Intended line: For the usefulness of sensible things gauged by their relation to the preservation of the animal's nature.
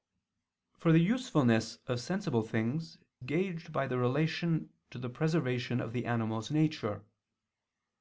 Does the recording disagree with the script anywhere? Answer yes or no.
no